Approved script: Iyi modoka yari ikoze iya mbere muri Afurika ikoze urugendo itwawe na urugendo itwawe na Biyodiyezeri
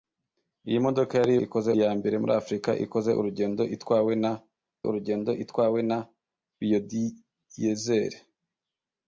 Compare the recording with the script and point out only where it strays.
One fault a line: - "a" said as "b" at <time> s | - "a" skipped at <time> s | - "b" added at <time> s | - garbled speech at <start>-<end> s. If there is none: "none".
none